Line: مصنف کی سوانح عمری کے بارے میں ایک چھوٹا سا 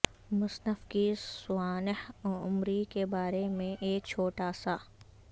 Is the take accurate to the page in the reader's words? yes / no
yes